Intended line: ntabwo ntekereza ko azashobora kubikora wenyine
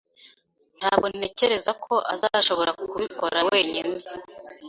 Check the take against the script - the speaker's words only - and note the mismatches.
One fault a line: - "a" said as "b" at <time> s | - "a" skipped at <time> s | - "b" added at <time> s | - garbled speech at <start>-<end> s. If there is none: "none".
none